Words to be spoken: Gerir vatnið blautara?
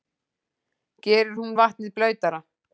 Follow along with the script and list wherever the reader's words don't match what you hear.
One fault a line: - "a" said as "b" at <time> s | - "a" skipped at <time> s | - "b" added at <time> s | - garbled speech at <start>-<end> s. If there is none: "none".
- "hún" added at 1.4 s